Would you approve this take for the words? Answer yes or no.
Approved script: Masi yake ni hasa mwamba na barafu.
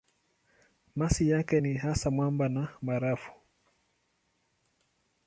yes